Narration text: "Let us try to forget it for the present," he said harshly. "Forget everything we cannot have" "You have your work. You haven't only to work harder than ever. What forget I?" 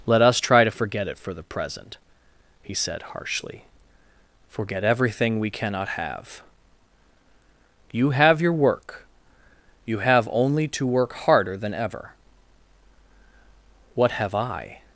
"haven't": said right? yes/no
no